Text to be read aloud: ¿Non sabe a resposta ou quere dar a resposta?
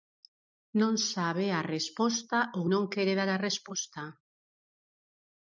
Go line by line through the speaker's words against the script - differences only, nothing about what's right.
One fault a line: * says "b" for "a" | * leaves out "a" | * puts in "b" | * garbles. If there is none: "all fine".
* puts in "non"